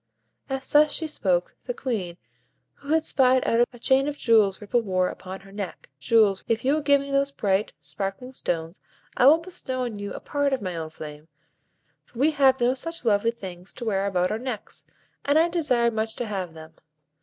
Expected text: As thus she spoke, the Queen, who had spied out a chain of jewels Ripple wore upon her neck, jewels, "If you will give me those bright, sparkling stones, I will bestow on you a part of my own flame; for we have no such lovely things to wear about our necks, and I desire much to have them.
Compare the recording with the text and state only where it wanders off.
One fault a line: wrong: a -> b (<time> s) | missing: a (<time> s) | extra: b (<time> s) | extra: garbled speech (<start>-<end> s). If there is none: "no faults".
no faults